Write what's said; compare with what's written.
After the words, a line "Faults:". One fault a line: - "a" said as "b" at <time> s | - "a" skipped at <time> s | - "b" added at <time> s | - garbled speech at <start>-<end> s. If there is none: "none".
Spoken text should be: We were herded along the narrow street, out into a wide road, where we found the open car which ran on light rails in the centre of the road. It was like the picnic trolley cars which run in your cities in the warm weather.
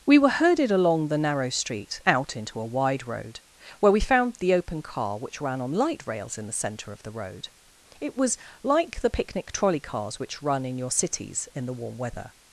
We were herded along the narrow street, out into a wide road, where we found the open car which ran on light rails in the centre of the road. It was like the picnic trolley cars which run in your cities in the warm weather.
Faults:
none